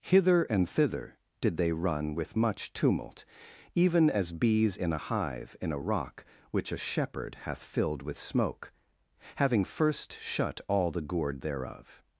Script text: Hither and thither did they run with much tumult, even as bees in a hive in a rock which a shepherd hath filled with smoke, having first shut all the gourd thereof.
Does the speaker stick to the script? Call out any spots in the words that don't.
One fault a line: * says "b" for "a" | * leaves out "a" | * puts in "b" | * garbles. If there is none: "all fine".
all fine